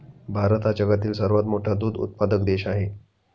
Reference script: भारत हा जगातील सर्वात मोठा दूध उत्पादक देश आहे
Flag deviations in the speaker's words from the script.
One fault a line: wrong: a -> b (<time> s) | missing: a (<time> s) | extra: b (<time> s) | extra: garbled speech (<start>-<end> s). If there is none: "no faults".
no faults